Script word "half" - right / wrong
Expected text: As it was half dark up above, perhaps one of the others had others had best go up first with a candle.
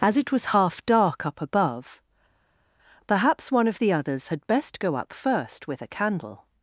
right